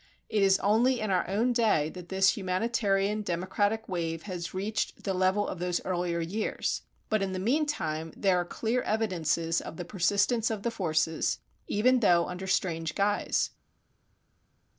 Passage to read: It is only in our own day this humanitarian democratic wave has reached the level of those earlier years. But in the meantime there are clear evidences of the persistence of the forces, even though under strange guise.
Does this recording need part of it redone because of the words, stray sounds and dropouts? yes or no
yes